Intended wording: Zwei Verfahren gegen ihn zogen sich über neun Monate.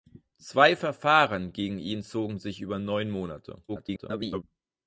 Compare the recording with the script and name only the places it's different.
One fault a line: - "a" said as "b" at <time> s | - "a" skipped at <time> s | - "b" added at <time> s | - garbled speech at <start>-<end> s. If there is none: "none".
- garbled speech at 3.7-4.4 s